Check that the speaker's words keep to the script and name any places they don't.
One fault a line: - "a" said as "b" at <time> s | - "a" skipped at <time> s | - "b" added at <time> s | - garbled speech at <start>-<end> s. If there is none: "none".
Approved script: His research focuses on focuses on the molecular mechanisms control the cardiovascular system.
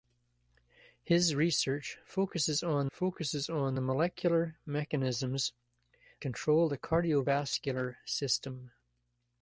none